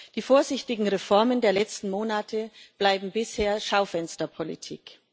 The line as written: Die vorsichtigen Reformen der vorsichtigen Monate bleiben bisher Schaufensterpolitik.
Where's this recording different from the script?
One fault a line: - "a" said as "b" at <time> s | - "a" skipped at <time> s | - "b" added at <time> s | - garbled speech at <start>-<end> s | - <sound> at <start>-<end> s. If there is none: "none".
- "vorsichtigen" said as "letzten" at 1.5 s